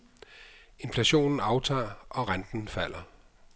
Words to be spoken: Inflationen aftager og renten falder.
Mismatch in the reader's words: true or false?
false